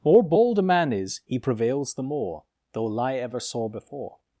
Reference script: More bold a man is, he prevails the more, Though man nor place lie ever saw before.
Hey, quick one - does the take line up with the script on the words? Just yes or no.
no